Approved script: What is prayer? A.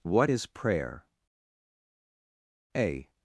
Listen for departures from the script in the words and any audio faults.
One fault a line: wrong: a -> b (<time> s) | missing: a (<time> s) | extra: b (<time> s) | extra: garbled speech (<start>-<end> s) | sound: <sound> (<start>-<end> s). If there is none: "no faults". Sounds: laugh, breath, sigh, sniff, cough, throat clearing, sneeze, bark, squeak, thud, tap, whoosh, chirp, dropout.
no faults